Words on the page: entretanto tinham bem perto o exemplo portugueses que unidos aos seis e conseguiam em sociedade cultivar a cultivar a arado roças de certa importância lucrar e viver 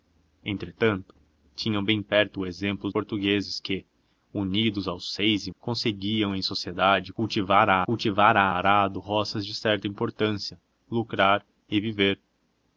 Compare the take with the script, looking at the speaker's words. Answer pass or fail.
pass